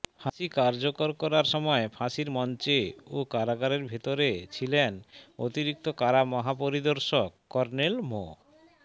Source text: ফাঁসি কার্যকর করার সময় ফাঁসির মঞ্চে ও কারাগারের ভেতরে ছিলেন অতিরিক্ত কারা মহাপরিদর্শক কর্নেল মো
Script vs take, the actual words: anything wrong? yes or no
no